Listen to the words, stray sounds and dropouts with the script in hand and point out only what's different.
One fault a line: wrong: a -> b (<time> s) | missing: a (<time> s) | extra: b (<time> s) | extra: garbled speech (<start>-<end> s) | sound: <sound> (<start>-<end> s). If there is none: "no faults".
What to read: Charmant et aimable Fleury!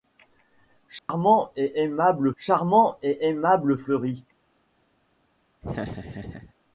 sound: dropout (1.0-1.1 s)
extra: charmant et aimable (2.4 s)
sound: laugh (5.6-6.5 s)